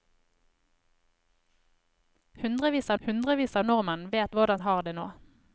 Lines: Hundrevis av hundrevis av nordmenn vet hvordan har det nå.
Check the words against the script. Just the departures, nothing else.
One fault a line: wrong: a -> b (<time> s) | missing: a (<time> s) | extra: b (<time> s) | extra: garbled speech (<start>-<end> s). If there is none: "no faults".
no faults